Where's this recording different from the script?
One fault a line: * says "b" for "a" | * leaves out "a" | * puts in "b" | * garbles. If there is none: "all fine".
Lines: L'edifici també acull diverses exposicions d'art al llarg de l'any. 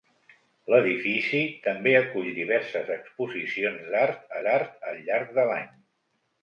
* puts in "d'art"